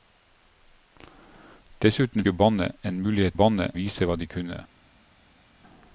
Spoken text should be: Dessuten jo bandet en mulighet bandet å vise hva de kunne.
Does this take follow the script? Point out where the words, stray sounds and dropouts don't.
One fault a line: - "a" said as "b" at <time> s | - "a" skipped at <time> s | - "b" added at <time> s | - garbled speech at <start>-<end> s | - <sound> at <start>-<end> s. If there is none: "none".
none